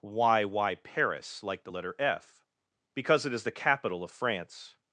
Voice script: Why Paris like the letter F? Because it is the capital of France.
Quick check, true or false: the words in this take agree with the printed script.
false